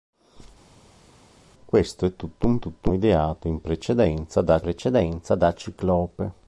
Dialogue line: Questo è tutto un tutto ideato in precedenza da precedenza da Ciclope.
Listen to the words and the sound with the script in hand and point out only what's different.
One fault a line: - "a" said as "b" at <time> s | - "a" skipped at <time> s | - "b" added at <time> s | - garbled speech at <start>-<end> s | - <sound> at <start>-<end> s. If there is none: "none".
none